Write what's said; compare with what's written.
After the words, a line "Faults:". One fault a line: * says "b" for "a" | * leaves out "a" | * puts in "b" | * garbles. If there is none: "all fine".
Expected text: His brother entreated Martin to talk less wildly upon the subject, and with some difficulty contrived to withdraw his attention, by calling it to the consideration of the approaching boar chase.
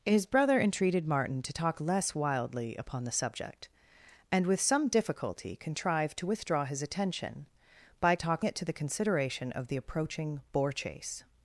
His brother entreated Martin to talk less wildly upon the subject, and with some difficulty contrived to withdraw his attention, by talk it to the consideration of the approaching boar chase.
Faults:
* says "talk" for "calling"